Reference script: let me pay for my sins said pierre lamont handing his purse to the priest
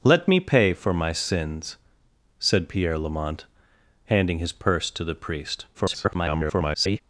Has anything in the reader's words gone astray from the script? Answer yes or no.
yes